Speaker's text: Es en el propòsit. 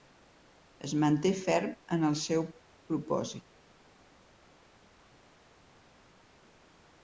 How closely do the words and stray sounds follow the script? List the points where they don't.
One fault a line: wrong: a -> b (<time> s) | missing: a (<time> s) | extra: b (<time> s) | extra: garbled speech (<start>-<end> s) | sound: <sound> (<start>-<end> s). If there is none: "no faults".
extra: manté ferm (1.0 s)
extra: seu (2.2 s)